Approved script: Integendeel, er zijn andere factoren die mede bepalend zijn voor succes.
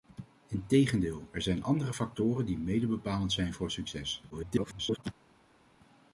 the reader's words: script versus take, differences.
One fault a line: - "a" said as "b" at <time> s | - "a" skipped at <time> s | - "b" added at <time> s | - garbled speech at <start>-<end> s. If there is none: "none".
- garbled speech at 4.3-5.0 s